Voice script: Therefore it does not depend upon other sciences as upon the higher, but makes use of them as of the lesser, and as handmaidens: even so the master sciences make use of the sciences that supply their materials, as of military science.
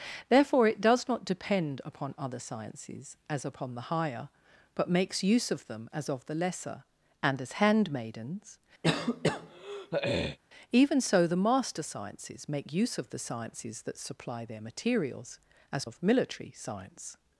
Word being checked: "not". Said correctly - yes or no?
yes